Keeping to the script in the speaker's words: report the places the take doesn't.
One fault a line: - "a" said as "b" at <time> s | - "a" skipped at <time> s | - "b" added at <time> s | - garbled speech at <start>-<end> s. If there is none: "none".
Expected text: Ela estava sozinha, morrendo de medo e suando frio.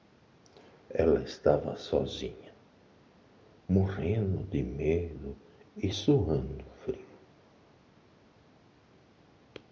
none